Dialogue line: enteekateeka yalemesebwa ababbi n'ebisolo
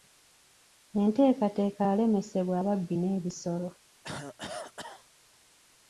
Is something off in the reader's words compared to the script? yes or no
no